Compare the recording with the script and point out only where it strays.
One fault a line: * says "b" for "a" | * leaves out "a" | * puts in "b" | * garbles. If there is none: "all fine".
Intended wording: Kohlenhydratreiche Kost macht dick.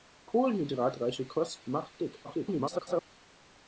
* garbles